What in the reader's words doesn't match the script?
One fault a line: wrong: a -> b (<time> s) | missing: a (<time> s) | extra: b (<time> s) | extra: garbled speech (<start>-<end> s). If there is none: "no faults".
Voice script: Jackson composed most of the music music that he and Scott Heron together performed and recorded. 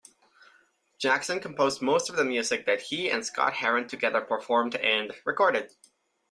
missing: music (2.6 s)